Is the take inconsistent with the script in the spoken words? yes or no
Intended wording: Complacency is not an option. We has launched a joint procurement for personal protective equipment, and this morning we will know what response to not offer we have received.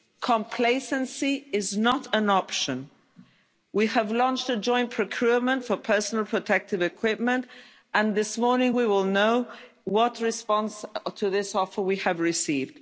yes